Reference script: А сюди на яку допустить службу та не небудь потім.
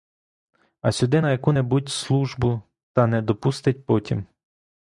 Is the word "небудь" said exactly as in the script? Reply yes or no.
no